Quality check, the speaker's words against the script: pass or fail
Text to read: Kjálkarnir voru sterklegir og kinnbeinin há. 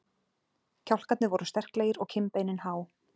pass